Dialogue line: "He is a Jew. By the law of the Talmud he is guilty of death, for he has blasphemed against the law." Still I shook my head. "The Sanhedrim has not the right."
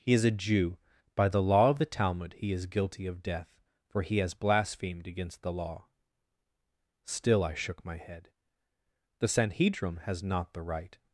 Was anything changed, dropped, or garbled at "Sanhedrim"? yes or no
no